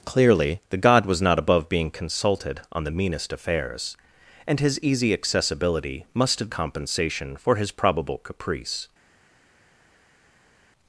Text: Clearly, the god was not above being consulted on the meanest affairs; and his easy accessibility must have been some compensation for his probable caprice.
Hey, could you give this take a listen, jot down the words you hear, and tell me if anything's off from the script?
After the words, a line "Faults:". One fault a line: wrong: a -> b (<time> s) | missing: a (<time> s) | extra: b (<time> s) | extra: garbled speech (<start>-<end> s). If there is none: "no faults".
Clearly, the god was not above being consulted on the meanest affairs; and his easy accessibility must have compensation for his probable caprice.
Faults:
missing: been some (6.5 s)